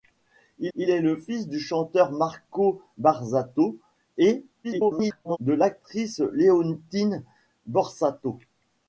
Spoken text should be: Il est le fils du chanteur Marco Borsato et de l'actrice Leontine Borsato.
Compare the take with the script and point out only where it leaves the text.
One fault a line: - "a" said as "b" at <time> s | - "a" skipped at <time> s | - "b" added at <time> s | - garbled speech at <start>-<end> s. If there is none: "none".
- "il" added at 0.7 s
- garbled speech at 4.6-5.4 s